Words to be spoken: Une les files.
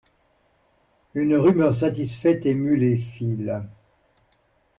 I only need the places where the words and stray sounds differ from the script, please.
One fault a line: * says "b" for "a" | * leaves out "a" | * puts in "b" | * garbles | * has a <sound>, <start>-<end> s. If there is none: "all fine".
* puts in "rumeur satisfaite émut"